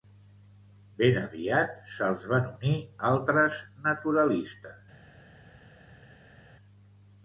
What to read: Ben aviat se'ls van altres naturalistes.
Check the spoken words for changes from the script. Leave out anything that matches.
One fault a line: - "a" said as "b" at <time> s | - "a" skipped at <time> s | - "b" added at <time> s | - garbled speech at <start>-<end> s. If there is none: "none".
- "unir" added at 2.5 s